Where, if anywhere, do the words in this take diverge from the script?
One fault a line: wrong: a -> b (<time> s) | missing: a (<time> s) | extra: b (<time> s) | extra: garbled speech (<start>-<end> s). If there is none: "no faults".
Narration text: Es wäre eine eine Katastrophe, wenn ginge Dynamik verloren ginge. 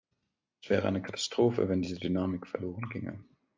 missing: eine (1.0 s)
wrong: ginge -> diese (1.8 s)